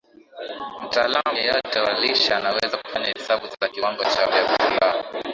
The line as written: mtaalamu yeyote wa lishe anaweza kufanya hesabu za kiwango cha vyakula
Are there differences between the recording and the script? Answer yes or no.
no